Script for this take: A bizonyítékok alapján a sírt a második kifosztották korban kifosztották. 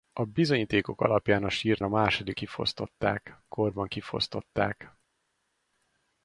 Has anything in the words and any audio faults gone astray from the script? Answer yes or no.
no